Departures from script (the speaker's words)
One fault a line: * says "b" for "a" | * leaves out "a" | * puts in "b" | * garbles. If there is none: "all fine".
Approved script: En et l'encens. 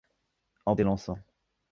all fine